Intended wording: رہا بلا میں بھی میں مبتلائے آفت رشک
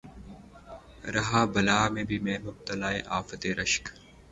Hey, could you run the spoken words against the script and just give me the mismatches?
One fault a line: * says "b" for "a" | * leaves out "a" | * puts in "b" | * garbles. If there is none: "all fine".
all fine